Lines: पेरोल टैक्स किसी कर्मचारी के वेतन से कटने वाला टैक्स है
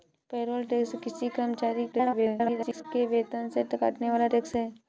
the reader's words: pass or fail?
fail